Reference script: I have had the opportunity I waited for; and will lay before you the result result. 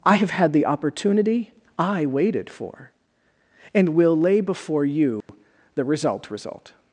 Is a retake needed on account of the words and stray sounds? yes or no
yes